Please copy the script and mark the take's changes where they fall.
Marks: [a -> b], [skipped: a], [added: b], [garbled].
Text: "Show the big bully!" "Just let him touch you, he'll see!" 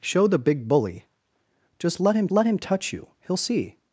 "Show the big bully!" "Just let him [added: let him] touch you, he'll see!"